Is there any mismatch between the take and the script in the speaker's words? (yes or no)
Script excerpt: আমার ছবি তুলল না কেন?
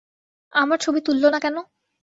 no